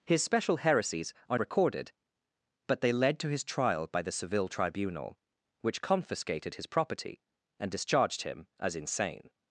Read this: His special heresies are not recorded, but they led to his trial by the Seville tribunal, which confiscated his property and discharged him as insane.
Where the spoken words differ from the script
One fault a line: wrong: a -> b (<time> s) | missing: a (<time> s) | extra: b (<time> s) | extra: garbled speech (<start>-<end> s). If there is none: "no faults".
missing: not (1.4 s)